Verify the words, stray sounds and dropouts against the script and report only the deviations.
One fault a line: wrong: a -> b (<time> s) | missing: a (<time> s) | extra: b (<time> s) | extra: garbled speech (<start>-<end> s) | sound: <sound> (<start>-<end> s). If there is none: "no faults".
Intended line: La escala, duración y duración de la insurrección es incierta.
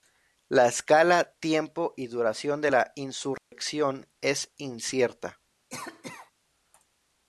wrong: duración -> tiempo (1.4 s)
sound: dropout (3.4-3.5 s)
sound: cough (5.7-6.3 s)